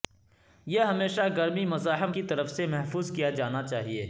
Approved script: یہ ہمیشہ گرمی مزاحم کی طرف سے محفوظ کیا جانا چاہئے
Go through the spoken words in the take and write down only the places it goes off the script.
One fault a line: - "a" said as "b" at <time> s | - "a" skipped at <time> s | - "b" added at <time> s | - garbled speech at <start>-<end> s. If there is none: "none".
none